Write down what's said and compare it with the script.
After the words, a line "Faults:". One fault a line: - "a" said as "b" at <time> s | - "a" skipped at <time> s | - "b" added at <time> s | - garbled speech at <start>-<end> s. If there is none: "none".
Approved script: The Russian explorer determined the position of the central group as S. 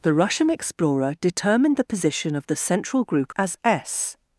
The Russian explorer determined the position of the central group as S.
Faults:
none